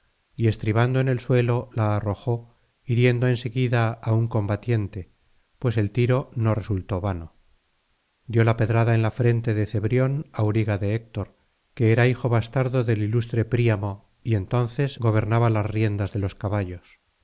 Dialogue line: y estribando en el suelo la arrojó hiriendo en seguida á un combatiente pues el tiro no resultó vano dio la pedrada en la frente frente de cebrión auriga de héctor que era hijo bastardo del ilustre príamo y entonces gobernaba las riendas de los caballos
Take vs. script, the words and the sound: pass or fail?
fail